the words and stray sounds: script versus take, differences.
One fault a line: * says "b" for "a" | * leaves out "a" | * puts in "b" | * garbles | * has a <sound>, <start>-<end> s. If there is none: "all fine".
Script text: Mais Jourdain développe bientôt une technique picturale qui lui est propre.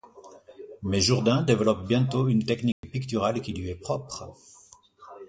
* has a dropout, 2.7-2.8 s